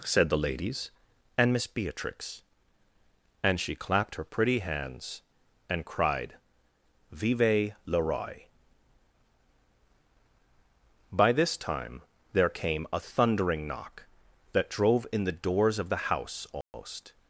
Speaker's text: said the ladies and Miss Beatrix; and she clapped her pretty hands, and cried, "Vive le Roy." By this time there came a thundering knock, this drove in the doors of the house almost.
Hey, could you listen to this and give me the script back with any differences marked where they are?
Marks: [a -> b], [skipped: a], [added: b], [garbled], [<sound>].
said the ladies and Miss Beatrix; and she clapped her pretty hands, and cried, "Vive le Roy." By this time there came a thundering knock, [this -> that] drove in the doors of the house almost. [dropout]